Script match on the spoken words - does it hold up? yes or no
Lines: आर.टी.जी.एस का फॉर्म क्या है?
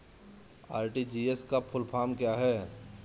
no